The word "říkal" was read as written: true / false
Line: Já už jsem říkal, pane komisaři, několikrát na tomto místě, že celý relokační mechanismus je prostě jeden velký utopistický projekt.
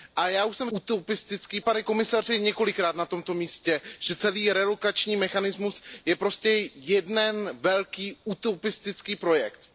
false